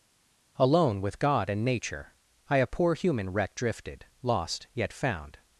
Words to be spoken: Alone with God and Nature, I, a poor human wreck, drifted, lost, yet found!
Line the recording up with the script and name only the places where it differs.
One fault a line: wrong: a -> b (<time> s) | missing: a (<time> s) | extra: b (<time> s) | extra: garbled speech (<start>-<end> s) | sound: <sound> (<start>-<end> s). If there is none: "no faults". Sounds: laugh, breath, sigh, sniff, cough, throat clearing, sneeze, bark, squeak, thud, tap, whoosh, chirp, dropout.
no faults